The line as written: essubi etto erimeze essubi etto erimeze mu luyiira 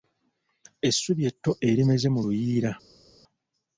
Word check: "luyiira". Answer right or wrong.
right